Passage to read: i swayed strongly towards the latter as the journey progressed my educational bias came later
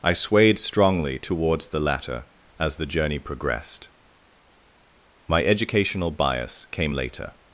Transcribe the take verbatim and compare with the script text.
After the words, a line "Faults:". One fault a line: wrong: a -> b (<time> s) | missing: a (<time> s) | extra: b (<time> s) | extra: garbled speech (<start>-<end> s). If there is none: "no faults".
i swayed strongly towards the latter as the journey progressed my educational bias came later
Faults:
no faults